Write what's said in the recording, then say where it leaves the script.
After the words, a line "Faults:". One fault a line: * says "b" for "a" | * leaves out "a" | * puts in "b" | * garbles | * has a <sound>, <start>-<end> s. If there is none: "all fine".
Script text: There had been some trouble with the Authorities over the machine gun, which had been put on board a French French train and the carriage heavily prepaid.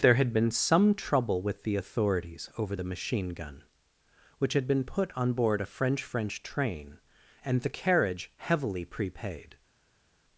There had been some trouble with the Authorities over the machine gun, which had been put on board a French French train and the carriage heavily prepaid.
Faults:
all fine